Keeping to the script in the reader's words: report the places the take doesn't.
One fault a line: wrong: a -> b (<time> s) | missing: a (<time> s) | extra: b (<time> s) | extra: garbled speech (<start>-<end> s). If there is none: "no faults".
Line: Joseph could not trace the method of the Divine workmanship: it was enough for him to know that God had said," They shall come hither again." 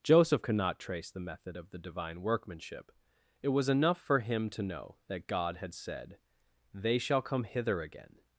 no faults